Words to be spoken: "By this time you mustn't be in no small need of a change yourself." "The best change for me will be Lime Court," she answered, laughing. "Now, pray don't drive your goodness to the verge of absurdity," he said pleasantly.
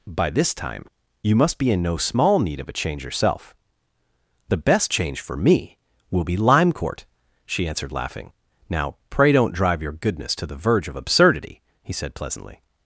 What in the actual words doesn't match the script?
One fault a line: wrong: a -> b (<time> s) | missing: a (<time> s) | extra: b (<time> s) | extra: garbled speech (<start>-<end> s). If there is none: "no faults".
wrong: mustn't -> must (1.4 s)